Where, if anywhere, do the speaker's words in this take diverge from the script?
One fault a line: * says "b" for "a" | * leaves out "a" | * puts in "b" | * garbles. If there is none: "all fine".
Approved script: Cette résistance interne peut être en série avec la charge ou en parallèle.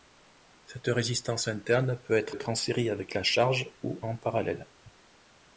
* puts in "être"